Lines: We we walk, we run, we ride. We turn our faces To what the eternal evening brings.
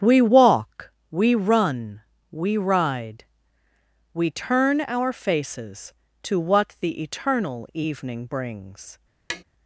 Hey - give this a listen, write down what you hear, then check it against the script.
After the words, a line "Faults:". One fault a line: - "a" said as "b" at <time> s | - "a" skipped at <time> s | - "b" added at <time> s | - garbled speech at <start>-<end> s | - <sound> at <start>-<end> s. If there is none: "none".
We walk, we run, we ride. We turn our faces To what the eternal evening brings.
Faults:
- "we" skipped at 0.2 s
- tap at 9.3-9.4 s